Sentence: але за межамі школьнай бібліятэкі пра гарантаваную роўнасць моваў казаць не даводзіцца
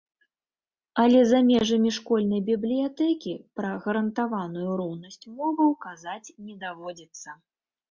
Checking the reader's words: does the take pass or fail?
pass